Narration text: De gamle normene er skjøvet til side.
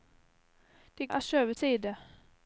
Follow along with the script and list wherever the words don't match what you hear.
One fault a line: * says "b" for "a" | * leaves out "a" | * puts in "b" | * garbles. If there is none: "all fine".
* leaves out "gamle normene"
* leaves out "til"